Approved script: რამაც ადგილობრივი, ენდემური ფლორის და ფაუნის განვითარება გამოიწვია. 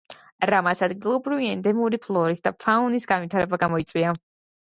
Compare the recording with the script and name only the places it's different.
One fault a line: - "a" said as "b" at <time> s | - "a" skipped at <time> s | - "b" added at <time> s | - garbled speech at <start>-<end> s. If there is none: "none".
none